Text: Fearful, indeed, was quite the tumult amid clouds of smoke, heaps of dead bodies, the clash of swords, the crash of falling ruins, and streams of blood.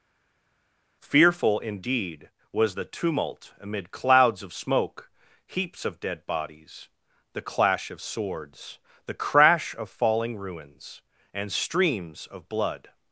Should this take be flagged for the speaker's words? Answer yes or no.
yes